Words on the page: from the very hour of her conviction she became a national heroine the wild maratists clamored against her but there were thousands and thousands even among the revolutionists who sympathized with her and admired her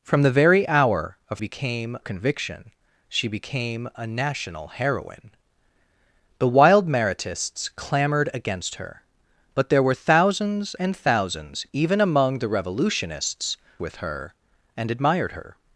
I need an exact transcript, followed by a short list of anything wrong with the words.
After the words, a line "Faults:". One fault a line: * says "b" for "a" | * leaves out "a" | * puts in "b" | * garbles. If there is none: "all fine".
from the very hour of became conviction she became a national heroine the wild maratists clamored against her but there were thousands and thousands even among the revolutionists with her and admired her
Faults:
* says "became" for "her"
* leaves out "who sympathized"